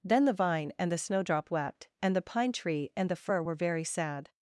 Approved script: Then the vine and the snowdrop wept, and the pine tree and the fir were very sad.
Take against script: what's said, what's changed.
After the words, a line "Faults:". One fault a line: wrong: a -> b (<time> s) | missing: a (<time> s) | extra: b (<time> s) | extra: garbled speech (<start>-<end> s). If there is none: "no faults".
Then the vine and the snowdrop wept, and the pine tree and the fir were very sad.
Faults:
no faults